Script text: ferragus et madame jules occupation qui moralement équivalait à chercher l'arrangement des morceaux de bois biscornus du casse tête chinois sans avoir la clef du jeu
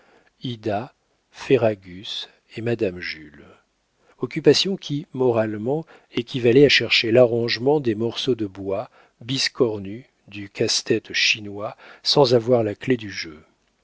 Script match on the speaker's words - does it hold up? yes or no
yes